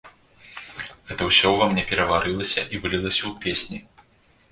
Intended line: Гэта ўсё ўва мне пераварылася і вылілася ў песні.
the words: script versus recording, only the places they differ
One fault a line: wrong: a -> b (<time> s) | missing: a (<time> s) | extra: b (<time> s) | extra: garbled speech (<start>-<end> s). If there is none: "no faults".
no faults